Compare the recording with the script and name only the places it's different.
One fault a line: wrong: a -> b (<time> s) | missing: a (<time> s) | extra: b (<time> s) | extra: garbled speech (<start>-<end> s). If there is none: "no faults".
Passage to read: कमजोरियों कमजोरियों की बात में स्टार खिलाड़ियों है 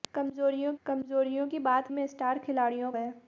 no faults